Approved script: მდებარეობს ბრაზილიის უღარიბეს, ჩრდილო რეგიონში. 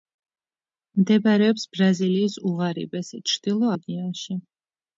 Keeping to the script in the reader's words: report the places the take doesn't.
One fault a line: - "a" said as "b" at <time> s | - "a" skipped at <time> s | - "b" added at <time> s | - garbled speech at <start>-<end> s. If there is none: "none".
none